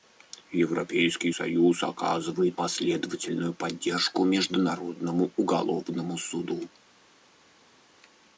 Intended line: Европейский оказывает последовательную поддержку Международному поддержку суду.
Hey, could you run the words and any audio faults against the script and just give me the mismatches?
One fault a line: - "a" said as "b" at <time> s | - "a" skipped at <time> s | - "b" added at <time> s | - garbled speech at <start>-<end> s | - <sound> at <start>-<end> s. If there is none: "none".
- "союз" added at 1.3 s
- "поддержку" said as "уголовному" at 5.4 s